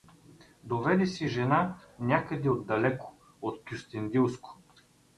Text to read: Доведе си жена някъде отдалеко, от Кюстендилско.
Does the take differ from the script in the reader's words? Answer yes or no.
no